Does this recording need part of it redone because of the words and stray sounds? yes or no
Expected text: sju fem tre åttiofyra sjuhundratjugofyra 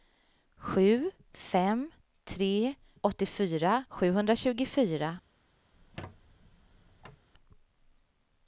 yes